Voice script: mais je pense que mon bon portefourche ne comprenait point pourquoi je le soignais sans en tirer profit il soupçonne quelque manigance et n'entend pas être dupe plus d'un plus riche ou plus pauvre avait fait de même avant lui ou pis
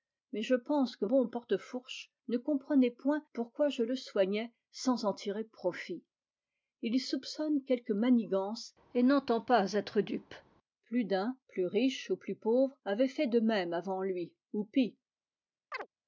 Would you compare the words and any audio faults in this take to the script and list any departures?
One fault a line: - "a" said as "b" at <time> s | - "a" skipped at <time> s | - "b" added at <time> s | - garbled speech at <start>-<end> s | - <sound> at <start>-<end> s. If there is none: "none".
- "mon" skipped at 1.1 s
- chirp at 15.7-15.9 s